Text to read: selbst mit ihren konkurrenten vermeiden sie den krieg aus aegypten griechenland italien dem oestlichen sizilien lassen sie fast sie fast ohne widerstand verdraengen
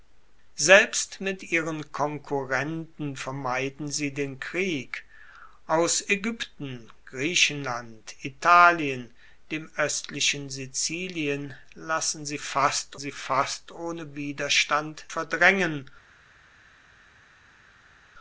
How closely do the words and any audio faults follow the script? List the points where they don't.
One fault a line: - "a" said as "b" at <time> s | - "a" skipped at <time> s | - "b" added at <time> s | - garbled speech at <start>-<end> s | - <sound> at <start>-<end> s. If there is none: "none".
none